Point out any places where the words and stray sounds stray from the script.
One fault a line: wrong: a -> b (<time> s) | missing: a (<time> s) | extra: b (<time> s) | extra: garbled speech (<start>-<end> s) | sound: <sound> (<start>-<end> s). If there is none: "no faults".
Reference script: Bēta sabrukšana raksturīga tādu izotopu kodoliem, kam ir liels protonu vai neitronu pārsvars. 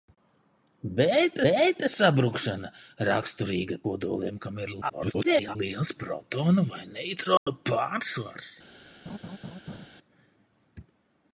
extra: bēta (1.4 s)
missing: tādu izotopu (3.8 s)
extra: garbled speech (4.8-5.6 s)
sound: dropout (7.4-7.5 s)
sound: laugh (9.1-9.9 s)